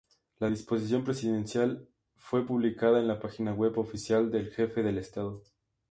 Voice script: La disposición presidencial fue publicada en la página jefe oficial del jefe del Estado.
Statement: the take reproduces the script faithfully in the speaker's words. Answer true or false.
false